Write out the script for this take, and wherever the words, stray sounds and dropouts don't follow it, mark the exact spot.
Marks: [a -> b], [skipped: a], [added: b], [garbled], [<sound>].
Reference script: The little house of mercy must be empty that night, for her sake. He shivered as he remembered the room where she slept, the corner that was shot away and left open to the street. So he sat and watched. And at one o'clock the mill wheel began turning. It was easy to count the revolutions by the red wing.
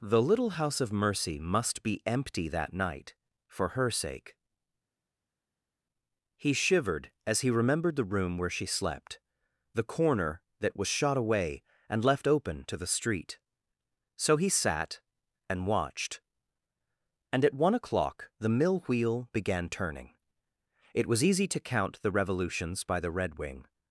The little house of mercy must be empty that night, for her sake. He shivered as he remembered the room where she slept, the corner that was shot away and left open to the street. So he sat and watched. And at one o'clock the mill wheel began turning. It was easy to count the revolutions by the red wing.